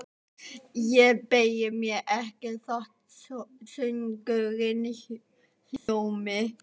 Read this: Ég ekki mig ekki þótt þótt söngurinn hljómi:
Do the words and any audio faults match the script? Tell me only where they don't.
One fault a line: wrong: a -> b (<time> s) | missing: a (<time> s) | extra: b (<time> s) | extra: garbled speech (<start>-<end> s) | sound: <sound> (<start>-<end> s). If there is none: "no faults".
wrong: ekki -> beygi (1.3 s)
missing: þótt (2.9 s)
sound: dropout (5.8-5.9 s)